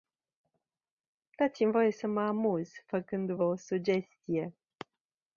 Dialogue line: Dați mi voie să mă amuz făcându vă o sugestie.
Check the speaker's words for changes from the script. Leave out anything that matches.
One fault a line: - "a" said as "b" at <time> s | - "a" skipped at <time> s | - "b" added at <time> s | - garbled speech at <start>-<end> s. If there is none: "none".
none